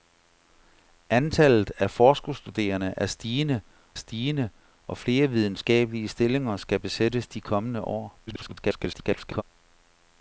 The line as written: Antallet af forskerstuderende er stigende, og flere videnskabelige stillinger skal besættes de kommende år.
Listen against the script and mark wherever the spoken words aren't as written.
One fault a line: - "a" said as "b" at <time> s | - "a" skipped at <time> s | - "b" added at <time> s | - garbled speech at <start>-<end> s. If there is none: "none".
- "stigende" added at 3.9 s
- garbled speech at 8.3-9.4 s